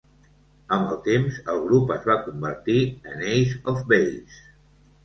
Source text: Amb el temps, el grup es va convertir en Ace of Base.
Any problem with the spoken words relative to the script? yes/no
no